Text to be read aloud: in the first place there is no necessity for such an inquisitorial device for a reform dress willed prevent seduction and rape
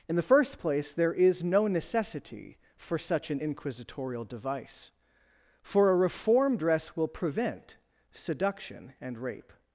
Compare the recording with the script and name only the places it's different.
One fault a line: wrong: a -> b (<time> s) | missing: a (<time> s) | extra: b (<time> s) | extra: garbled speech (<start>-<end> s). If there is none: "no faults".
wrong: willed -> will (6.9 s)